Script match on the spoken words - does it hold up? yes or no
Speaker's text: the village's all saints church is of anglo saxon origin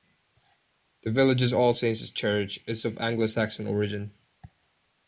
yes